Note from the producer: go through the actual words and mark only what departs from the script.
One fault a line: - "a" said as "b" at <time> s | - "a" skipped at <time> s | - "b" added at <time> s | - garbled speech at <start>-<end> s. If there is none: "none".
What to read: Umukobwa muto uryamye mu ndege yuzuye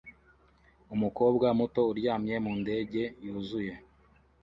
none